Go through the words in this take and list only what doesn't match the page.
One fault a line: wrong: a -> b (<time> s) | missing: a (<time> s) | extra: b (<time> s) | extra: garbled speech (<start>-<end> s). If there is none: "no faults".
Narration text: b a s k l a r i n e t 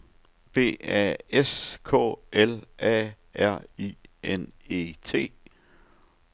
no faults